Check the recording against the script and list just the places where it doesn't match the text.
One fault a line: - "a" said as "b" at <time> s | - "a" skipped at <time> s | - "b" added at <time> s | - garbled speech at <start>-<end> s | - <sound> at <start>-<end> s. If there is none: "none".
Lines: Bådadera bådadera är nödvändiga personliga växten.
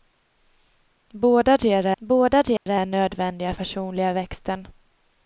- dropout at 2.6-2.7 s